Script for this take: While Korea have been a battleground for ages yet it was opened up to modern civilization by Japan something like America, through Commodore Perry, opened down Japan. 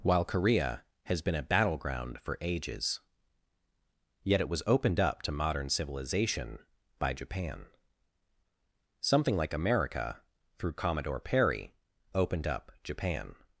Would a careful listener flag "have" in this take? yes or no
yes